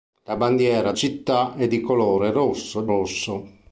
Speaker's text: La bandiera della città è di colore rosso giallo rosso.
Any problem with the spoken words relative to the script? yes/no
yes